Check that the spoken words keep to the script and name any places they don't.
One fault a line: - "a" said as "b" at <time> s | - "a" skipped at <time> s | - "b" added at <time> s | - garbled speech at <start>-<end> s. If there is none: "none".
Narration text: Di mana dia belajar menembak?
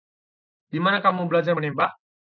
- "dia" said as "kamu" at 1.0 s